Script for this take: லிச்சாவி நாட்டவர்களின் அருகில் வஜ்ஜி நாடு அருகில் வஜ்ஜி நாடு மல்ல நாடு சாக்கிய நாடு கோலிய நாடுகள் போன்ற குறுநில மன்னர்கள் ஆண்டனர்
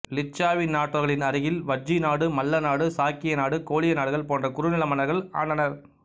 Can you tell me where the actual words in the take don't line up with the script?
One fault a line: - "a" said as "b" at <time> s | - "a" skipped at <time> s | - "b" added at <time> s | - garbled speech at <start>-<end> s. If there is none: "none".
- "அருகில் வஜ்ஜி நாடு" skipped at 2.2 s